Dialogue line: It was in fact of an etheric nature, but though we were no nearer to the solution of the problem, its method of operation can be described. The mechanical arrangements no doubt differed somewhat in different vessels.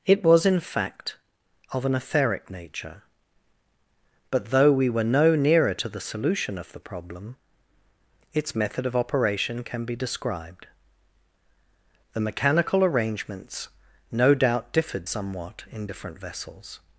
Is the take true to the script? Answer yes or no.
yes